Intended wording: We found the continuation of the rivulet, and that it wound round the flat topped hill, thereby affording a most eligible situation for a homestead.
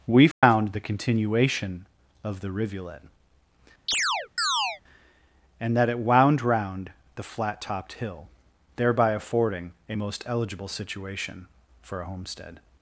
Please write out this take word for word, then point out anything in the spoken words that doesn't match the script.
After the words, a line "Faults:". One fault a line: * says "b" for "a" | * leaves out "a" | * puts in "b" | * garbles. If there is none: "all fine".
We found the continuation of the rivulet, and that it wound round the flat topped hill, thereby affording a most eligible situation for a homestead.
Faults:
all fine